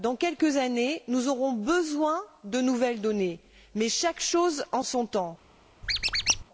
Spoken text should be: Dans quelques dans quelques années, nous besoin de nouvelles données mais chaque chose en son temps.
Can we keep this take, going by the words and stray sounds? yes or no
no